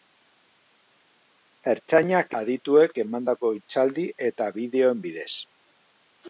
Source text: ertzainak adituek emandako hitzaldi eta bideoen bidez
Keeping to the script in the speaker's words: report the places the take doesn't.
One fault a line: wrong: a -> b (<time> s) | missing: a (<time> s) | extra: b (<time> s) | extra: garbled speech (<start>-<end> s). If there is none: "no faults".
no faults